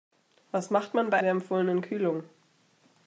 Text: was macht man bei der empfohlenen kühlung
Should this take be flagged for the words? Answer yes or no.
no